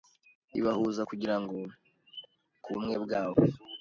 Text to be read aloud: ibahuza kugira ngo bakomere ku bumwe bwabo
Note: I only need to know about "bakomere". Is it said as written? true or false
false